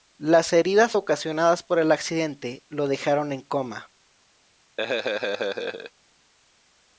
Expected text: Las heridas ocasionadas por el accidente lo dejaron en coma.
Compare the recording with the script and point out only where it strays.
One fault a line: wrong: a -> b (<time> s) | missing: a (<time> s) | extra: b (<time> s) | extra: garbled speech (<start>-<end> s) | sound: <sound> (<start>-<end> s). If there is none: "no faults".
sound: laugh (4.8-5.9 s)